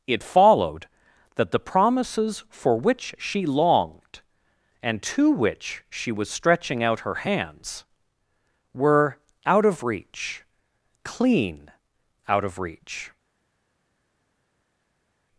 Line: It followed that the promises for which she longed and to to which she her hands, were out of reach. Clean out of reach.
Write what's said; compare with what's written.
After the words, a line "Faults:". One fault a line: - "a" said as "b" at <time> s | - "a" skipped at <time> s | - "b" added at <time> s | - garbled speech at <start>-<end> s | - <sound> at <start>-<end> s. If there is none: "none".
It followed that the promises for which she longed and to which she was stretching out her hands, were out of reach. Clean out of reach.
Faults:
- "to" skipped at 5.3 s
- "was stretching out" added at 6.1 s